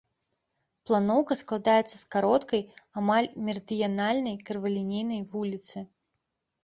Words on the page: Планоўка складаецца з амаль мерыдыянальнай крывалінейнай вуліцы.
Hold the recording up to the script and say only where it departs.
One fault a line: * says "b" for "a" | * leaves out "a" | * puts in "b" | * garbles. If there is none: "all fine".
* puts in "кароткай"